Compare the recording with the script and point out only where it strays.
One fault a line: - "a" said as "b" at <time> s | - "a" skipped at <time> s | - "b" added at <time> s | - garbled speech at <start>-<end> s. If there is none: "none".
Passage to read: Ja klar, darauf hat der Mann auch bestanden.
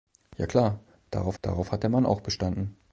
- "darauf" added at 1.4 s